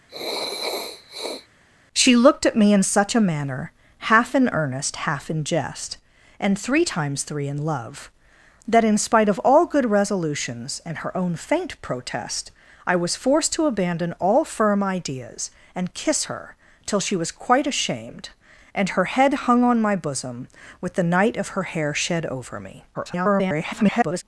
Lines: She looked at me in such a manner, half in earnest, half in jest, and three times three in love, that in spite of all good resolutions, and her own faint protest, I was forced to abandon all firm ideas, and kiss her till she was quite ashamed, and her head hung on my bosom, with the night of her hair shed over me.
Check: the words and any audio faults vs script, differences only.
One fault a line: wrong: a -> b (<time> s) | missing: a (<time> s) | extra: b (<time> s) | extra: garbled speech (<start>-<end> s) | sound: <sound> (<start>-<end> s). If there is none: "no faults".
sound: sniff (0.1-1.5 s)
extra: garbled speech (22.9-24.2 s)